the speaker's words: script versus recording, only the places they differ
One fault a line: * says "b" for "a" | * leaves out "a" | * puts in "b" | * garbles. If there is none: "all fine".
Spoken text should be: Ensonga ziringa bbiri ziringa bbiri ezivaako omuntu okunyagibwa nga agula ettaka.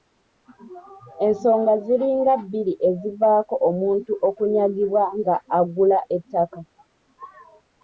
* leaves out "ziringa bbiri"